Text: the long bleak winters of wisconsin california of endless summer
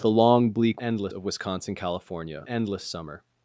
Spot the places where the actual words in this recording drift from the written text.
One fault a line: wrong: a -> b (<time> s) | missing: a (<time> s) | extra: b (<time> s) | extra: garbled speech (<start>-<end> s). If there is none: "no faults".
wrong: winters -> endless (0.8 s)
missing: of (2.4 s)